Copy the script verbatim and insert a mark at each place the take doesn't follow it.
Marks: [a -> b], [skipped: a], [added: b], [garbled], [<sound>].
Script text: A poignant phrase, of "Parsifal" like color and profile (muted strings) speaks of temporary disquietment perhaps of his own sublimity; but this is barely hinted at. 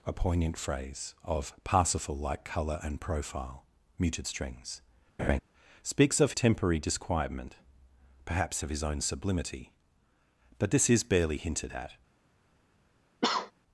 A poignant phrase, of "Parsifal" like color and profile (muted strings) [laugh] speaks of temporary disquietment perhaps of his own sublimity; but this is barely hinted at. [cough]